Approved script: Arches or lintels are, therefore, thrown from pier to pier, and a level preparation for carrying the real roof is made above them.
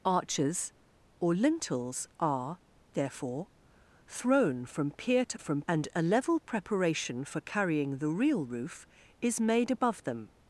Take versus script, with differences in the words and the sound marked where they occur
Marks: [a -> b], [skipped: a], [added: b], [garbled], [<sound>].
Arches or lintels are, therefore, thrown from pier to [pier, -> from] and a level preparation for carrying the real roof is made above them.